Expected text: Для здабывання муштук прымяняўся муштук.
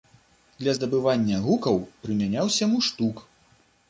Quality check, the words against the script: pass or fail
fail